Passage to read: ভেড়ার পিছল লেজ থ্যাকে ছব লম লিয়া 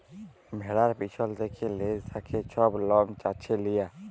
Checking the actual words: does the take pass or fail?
fail